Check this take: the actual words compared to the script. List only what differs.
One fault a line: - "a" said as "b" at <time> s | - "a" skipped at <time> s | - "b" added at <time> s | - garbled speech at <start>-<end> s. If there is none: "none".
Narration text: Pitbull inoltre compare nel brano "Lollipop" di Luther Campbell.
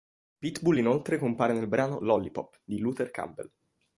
none